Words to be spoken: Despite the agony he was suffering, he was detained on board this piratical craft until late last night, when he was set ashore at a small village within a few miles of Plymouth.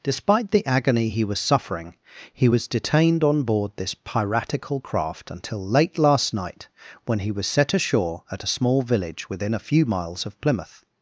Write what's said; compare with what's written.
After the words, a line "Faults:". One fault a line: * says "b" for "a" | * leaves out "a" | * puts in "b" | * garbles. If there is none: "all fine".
Despite the agony he was suffering, he was detained on board this piratical craft until late last night, when he was set ashore at a small village within a few miles of Plymouth.
Faults:
all fine